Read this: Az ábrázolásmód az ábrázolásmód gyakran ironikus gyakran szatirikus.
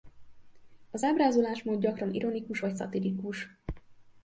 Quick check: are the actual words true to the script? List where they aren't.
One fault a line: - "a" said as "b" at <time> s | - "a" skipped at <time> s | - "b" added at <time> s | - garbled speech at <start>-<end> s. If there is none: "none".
- "az ábrázolásmód" skipped at 1.8 s
- "gyakran" said as "vagy" at 2.6 s